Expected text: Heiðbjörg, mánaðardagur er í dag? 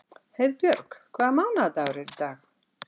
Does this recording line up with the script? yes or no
no